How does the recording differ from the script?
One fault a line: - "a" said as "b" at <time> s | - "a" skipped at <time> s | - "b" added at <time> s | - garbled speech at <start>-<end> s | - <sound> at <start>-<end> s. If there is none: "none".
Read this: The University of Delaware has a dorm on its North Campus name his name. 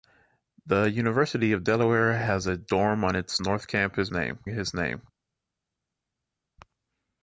none